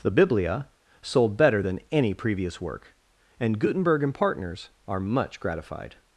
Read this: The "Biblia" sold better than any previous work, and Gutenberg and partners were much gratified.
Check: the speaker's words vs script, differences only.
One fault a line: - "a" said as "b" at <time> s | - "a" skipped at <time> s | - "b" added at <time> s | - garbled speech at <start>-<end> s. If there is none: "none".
- "were" said as "are" at 4.9 s